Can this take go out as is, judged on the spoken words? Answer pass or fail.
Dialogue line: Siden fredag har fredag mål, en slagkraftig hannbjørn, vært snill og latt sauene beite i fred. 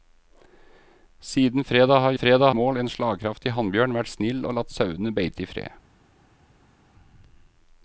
pass